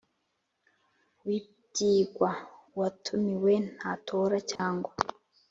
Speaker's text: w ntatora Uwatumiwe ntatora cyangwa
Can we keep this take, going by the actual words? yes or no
no